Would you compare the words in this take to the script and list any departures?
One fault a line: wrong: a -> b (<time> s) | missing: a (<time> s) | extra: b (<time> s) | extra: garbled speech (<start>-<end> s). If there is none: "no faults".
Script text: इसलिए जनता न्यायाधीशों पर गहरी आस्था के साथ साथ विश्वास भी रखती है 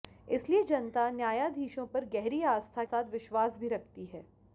missing: के साथ (2.8 s)